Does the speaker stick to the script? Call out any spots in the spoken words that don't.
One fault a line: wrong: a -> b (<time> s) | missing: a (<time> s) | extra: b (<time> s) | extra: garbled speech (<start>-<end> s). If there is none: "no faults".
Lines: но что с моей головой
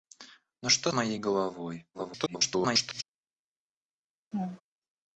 missing: с (0.9 s)
extra: garbled speech (1.9-3.0 s)